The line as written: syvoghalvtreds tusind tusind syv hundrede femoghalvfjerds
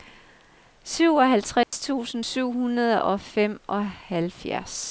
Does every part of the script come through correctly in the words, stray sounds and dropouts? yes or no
no